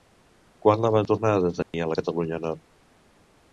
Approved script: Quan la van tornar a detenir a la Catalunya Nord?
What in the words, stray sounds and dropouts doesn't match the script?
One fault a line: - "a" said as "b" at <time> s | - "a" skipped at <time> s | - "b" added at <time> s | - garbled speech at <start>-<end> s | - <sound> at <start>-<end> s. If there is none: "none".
- dropout at 1.6-1.7 s